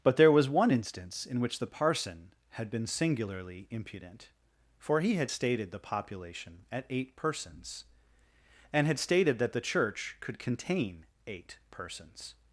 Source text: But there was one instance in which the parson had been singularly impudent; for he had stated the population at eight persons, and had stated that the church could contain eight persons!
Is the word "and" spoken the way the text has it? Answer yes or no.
yes